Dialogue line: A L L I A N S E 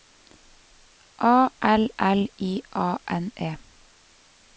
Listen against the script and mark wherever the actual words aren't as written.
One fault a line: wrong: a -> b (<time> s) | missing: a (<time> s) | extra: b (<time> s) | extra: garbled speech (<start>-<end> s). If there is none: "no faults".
missing: S (3.3 s)